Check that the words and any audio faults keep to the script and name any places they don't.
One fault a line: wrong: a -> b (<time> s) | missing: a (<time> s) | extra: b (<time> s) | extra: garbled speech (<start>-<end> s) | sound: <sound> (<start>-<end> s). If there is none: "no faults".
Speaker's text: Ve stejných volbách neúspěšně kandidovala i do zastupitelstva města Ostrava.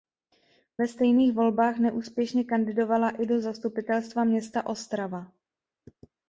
no faults